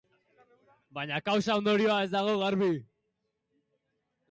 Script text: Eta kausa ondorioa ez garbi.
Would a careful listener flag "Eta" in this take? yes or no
yes